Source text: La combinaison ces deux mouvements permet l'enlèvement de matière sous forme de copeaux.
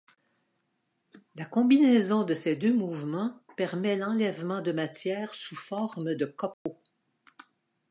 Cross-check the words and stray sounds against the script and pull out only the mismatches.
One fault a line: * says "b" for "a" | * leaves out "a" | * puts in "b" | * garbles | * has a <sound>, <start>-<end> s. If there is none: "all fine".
* puts in "de"
* has a dropout, 6.5-6.7 s